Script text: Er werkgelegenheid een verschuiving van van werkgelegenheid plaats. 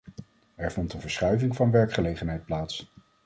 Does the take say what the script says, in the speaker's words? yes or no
no